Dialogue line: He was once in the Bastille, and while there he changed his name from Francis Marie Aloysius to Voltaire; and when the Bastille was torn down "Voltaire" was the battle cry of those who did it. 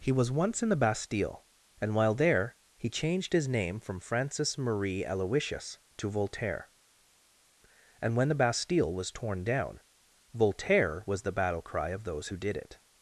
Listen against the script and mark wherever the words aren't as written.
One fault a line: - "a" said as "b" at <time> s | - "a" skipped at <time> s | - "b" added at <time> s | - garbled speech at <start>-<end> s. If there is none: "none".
none